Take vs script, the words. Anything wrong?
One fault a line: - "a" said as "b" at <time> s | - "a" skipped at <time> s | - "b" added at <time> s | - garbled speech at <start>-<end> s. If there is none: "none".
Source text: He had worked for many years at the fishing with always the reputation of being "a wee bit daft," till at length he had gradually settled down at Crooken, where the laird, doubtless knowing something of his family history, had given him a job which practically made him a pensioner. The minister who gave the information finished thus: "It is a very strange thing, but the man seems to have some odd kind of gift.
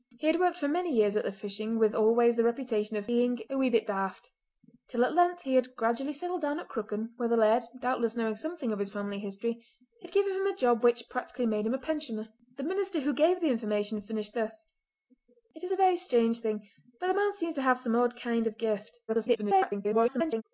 - garbled speech at 19.1-20.4 s